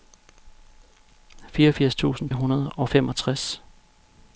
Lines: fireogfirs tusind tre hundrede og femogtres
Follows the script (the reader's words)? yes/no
no